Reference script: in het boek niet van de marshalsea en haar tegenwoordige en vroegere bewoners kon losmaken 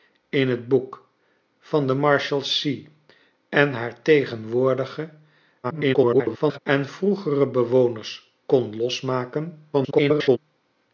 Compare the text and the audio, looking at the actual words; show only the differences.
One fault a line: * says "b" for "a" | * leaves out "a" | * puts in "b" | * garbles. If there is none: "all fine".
* leaves out "niet"
* garbles
* garbles